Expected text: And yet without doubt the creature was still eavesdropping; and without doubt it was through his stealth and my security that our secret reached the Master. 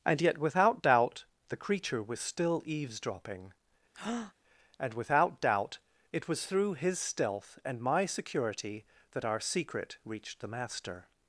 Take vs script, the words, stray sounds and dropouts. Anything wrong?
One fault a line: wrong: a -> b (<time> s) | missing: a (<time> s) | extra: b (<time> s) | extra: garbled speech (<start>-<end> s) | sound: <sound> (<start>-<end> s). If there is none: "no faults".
sound: breath (3.9-4.3 s)